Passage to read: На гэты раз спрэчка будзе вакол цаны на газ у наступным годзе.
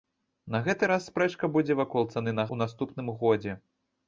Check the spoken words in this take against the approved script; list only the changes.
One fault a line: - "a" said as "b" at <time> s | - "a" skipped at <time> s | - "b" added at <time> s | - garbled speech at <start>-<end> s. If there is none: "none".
- "газ" skipped at 2.5 s